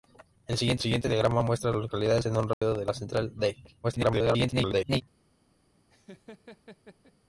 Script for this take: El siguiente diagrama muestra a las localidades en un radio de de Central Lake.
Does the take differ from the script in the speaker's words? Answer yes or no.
yes